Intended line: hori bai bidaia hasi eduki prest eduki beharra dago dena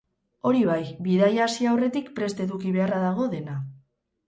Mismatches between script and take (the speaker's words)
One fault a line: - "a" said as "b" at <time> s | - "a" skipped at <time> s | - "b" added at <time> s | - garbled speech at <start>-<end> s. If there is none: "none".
- "eduki" said as "aurretik" at 1.7 s